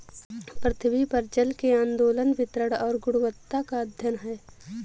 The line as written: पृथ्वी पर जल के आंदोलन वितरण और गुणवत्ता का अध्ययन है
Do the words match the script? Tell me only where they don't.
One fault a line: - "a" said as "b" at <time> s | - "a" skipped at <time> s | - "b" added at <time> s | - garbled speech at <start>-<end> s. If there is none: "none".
none